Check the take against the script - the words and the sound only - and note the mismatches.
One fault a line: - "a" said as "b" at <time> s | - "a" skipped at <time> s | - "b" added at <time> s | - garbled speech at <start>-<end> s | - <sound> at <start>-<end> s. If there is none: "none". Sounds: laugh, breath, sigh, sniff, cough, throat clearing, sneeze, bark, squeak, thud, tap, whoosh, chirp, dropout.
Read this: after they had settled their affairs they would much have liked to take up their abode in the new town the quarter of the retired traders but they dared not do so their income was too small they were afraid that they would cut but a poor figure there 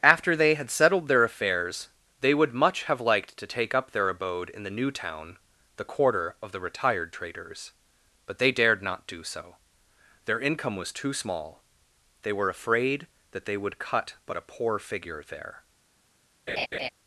- laugh at 16.5-16.9 s